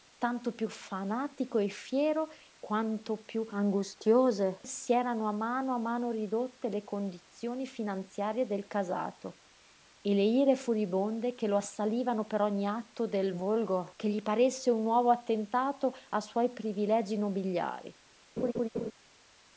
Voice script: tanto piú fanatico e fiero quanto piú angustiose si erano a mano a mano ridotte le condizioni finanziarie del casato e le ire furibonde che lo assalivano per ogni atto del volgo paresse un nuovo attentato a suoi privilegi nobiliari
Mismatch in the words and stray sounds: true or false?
true